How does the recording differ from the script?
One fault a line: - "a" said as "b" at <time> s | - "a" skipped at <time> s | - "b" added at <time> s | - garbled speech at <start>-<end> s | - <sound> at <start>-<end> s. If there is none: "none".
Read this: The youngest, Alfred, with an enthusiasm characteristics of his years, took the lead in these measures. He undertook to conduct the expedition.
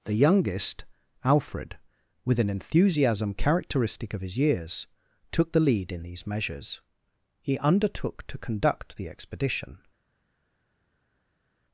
- "characteristics" said as "characteristic" at 3.4 s